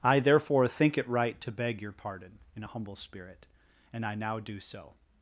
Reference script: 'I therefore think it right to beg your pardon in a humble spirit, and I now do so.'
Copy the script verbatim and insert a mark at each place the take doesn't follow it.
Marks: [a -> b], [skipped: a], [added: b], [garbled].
'I therefore think it right to beg your pardon in a humble spirit, and I now do so.'